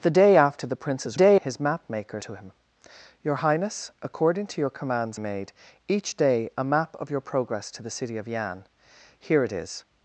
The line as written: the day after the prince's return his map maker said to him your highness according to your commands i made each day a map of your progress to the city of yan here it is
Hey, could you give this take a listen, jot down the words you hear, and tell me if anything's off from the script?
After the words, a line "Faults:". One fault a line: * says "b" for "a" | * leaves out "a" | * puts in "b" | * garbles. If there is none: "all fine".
the day after the prince's day his map maker to him your highness according to your commands made each day a map of your progress to the city of yan here it is
Faults:
* says "day" for "return"
* leaves out "said"
* leaves out "i"